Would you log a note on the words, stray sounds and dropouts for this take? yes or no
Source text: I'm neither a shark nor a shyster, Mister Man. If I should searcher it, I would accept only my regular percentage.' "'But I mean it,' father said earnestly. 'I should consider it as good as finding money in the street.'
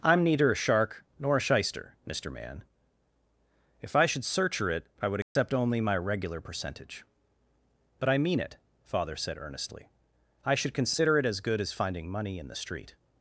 yes